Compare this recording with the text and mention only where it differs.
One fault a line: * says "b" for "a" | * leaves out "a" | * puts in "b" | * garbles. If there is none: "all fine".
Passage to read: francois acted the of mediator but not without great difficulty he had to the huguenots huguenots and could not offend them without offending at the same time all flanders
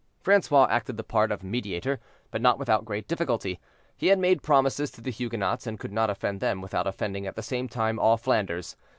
* puts in "part"
* puts in "made promises"
* leaves out "huguenots"